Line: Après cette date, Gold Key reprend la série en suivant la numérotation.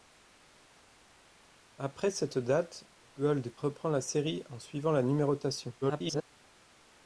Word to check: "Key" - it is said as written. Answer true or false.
false